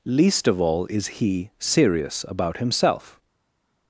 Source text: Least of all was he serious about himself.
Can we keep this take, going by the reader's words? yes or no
no